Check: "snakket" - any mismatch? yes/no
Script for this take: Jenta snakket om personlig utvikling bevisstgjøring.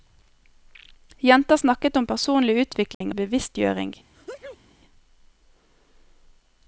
no